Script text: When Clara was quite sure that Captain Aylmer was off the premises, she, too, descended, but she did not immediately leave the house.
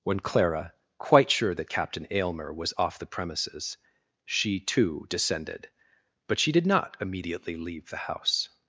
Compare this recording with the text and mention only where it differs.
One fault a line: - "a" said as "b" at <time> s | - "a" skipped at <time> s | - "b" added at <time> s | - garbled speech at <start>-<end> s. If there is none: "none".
- "was" skipped at 0.7 s